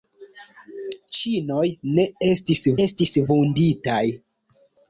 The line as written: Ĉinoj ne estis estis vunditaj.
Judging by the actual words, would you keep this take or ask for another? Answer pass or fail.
pass